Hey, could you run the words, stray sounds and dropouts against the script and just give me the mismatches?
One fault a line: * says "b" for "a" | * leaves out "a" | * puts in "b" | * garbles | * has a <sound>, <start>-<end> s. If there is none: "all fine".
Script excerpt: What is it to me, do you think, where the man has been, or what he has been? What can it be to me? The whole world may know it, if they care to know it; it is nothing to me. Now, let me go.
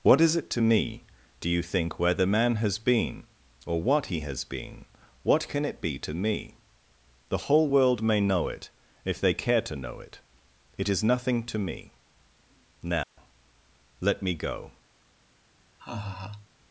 * has a dropout, 13.0-13.2 s
* has a laugh, 15.8-16.5 s